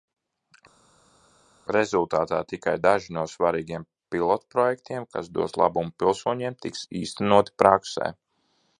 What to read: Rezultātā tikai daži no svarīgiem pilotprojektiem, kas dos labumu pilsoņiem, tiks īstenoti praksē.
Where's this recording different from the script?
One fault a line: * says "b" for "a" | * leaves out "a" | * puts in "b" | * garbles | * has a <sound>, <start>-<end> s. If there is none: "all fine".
all fine